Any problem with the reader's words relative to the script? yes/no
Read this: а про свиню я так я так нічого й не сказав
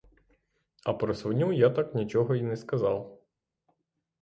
yes